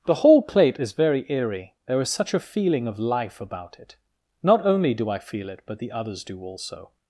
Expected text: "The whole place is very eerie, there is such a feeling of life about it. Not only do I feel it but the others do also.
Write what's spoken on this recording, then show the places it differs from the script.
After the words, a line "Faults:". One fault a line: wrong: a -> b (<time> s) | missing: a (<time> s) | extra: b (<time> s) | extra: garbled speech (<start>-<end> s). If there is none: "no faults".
"The whole plate is very eerie, there is such a feeling of life about it. Not only do I feel it but the others do also.
Faults:
wrong: place -> plate (0.4 s)